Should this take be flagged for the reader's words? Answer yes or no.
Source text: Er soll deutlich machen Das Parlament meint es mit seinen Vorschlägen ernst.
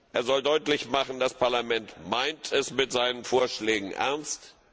no